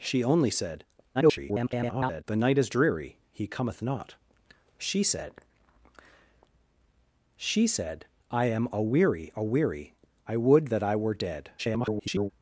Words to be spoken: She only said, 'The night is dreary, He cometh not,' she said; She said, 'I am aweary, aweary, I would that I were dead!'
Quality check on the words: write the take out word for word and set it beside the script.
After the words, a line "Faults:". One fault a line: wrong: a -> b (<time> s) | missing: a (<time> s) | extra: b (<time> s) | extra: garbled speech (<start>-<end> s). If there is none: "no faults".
She only said, [garbled] 'The night is dreary, He cometh not,' she said; She said, 'I am aweary, aweary, I would that I were dead!' [garbled]
Faults:
extra: garbled speech (1.1-2.2 s)
extra: garbled speech (11.6-12.3 s)